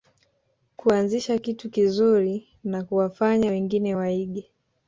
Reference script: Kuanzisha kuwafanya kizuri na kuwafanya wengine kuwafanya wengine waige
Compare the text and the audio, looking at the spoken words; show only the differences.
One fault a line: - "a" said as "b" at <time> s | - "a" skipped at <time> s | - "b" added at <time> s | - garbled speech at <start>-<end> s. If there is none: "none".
- "kuwafanya" said as "kitu" at 1.4 s
- "kuwafanya wengine" skipped at 4.0 s